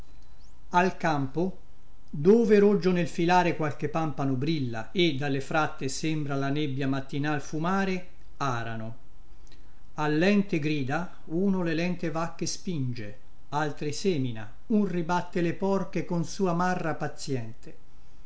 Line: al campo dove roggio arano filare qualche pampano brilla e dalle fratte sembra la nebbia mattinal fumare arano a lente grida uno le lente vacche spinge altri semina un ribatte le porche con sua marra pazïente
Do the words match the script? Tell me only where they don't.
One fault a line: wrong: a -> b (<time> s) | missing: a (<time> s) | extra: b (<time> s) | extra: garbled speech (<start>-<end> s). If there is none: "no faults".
wrong: arano -> nel (2.9 s)